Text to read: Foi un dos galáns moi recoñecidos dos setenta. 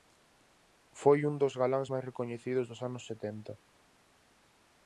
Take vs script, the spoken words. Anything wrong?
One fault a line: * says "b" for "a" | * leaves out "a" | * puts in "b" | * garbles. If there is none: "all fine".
* says "máis" for "moi"
* puts in "anos"